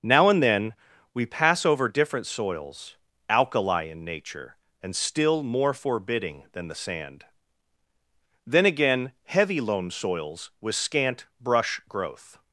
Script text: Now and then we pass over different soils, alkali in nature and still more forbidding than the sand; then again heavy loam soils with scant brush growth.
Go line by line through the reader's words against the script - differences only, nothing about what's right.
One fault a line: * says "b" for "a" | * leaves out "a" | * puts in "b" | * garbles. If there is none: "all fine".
all fine